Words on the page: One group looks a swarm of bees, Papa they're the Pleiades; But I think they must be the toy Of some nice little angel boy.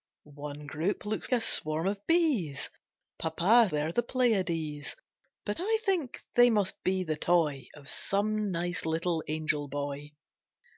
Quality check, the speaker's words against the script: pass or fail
pass